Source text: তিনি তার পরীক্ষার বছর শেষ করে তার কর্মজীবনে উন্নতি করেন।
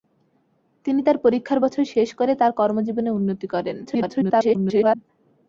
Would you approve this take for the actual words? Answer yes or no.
no